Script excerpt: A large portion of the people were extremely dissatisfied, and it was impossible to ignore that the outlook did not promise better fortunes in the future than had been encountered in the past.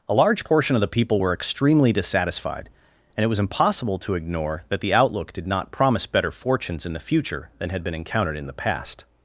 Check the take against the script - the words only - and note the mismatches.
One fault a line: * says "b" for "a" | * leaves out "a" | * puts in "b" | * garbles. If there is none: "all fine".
all fine